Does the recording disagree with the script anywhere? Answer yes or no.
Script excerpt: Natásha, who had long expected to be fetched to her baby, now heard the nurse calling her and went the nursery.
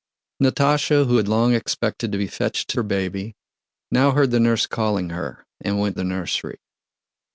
no